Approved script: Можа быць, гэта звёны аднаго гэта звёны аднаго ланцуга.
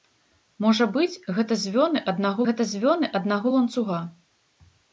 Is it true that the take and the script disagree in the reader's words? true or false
false